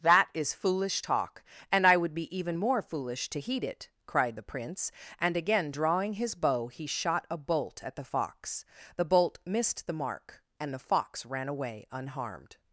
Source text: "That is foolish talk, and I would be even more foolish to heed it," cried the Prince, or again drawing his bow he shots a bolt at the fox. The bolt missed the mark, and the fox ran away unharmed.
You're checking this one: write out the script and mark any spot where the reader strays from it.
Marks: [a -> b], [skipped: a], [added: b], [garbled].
"That is foolish talk, and I would be even more foolish to heed it," cried the Prince, [or -> and] again drawing his bow he [shots -> shot] a bolt at the fox. The bolt missed the mark, and the fox ran away unharmed.